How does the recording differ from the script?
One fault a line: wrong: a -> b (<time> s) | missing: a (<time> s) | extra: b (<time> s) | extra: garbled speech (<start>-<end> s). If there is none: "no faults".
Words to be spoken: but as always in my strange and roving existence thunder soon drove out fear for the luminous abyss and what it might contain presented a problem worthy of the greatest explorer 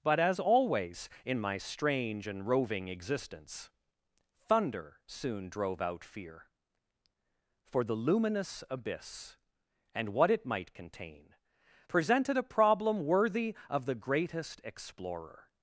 no faults